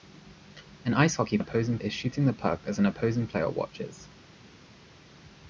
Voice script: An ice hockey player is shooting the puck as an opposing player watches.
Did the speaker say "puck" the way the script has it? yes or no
yes